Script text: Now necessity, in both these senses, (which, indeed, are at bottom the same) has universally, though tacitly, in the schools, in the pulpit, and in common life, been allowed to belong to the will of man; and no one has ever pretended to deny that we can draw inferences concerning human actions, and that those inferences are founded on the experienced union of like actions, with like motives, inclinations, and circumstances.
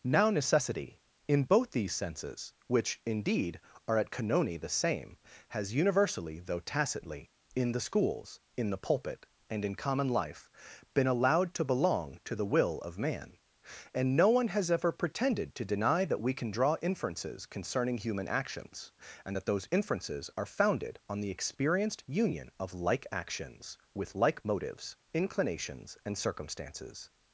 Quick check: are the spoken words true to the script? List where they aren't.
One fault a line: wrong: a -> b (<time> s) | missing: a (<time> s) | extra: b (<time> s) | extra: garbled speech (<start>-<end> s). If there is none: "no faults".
wrong: bottom -> canoni (4.1 s)